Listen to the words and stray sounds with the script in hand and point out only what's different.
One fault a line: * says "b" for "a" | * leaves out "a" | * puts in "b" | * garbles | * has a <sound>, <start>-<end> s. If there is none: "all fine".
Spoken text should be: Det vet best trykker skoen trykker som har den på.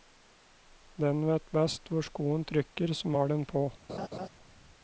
* says "Den" for "Det"
* says "hvor" for "trykker"
* has a laugh, 3.9-4.3 s